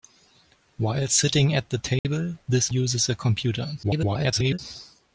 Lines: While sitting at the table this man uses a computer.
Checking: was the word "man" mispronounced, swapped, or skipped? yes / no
yes